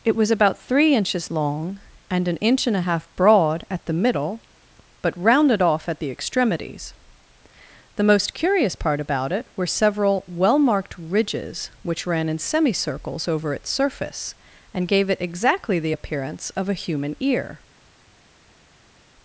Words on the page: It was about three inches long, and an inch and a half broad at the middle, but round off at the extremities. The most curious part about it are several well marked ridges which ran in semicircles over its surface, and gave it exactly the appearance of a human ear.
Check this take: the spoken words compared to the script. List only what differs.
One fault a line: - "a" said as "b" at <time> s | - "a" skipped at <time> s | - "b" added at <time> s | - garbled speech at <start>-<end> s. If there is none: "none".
- "round" said as "rounded" at 5.2 s
- "are" said as "were" at 9.6 s